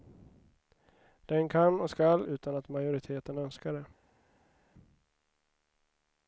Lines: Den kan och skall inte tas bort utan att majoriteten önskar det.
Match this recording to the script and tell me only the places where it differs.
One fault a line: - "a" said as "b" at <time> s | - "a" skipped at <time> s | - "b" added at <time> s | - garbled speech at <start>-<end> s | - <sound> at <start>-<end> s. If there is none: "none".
- "inte tas bort" skipped at 2.2 s